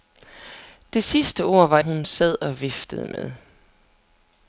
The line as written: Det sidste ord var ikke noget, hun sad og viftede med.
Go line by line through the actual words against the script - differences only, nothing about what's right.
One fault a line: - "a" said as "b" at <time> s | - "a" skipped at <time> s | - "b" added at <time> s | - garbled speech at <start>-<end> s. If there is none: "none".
- "ikke noget" skipped at 1.8 s